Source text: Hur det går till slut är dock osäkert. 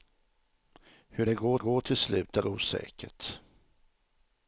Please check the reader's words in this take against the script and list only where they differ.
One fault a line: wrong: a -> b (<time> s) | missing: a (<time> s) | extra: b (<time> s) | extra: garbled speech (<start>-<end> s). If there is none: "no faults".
extra: går (1.6 s)
missing: dock (2.4 s)